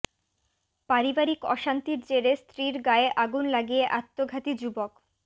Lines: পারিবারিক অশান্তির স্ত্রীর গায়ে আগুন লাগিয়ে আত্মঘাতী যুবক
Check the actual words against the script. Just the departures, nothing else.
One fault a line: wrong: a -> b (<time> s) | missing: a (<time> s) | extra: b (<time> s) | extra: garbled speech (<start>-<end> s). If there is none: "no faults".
extra: জেরে (2.1 s)